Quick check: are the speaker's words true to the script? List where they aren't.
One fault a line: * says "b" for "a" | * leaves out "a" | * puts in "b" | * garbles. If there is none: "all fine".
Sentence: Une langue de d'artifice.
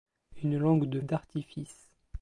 all fine